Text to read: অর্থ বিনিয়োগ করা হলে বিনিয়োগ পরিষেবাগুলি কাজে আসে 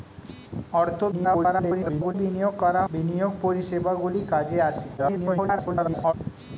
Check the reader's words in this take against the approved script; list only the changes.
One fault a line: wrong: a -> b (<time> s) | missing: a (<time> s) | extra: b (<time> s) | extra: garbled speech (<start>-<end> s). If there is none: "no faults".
extra: garbled speech (1.1-2.1 s)
missing: হলে (2.8 s)
extra: garbled speech (5.0-6.1 s)